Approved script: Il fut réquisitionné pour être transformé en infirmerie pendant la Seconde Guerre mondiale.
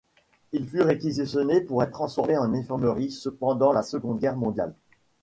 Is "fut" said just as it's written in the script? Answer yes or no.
yes